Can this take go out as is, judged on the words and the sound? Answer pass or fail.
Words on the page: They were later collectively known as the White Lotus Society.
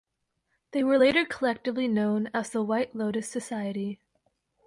pass